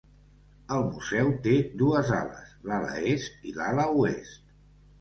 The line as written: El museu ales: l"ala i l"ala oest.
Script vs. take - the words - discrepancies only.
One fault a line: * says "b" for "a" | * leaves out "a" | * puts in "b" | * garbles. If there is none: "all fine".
* puts in "té dues"
* puts in "est"